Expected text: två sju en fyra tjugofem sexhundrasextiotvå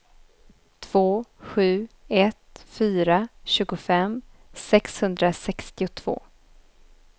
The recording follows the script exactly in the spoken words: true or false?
false